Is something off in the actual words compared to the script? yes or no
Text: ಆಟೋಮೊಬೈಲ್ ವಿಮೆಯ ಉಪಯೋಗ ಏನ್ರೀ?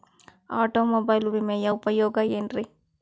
no